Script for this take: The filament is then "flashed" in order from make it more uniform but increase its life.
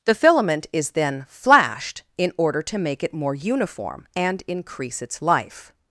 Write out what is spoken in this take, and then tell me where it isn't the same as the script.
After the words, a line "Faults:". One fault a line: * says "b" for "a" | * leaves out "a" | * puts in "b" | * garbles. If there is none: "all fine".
The filament is then "flashed" in order to make it more uniform and increase its life.
Faults:
* says "to" for "from"
* says "and" for "but"